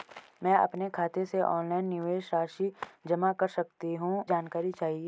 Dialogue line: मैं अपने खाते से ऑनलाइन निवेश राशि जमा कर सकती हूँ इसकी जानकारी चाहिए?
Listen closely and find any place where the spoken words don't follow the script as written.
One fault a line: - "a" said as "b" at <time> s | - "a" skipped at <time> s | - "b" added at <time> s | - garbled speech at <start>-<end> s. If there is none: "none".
- "इसकी" skipped at 4.2 s